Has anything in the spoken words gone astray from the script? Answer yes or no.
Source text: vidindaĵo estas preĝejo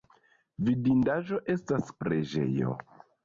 no